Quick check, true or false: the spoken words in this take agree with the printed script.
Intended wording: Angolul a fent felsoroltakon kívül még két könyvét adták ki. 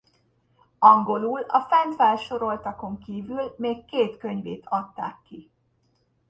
true